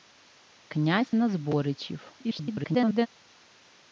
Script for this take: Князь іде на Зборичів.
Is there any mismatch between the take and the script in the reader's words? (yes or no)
yes